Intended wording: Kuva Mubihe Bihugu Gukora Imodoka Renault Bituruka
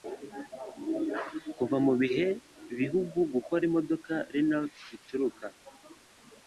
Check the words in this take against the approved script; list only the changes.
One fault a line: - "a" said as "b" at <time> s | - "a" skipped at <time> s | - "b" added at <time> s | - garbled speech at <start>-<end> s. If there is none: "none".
none